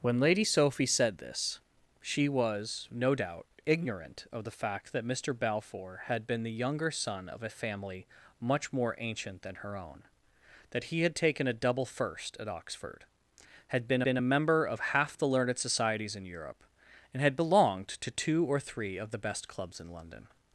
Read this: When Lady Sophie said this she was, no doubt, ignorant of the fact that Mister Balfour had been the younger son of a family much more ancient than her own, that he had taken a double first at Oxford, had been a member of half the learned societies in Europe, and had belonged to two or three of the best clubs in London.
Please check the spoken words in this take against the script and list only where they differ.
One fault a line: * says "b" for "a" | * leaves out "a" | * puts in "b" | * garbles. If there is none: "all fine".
* puts in "been"